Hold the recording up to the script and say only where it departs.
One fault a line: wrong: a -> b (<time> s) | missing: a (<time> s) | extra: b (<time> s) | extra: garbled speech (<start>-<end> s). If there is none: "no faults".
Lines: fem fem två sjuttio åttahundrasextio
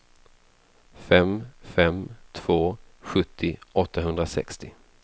no faults